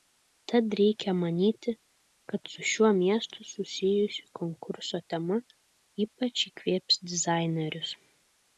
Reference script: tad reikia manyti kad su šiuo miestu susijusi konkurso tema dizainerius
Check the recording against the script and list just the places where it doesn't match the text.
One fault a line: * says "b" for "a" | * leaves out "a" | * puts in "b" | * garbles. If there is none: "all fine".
* puts in "ypač įkvėps"